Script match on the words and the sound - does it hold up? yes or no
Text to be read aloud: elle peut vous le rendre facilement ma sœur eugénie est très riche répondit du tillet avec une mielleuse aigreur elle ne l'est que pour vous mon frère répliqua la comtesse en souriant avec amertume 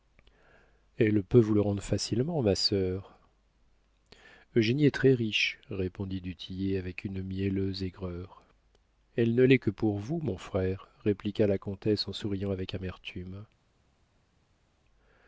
yes